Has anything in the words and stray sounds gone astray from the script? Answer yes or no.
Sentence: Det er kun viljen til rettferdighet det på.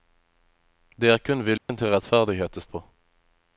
yes